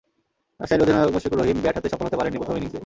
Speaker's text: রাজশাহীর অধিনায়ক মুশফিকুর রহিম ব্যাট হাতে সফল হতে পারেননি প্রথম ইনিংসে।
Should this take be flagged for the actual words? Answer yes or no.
no